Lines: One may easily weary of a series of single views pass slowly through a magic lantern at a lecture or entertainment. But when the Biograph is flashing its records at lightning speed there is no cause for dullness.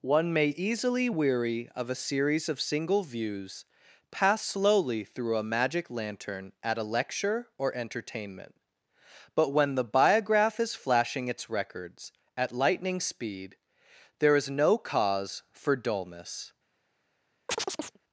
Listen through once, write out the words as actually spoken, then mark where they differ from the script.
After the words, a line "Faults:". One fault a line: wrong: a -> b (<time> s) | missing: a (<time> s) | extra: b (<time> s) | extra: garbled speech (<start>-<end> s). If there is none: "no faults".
One may easily weary of a series of single views pass slowly through a magic lantern at a lecture or entertainment. But when the Biograph is flashing its records at lightning speed there is no cause for dullness.
Faults:
no faults